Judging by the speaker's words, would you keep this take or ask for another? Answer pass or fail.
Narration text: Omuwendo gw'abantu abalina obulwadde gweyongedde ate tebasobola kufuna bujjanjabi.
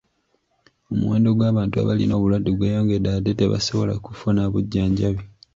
pass